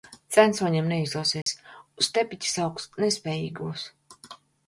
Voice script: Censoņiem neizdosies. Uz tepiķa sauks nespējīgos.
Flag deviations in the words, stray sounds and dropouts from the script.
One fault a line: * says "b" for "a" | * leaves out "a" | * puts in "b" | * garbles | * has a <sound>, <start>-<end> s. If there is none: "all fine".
* has a dropout, 1.4-1.5 s